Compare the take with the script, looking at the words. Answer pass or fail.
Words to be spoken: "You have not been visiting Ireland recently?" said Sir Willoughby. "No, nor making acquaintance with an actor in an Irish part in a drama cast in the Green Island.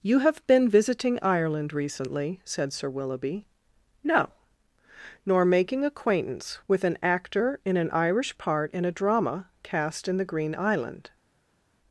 fail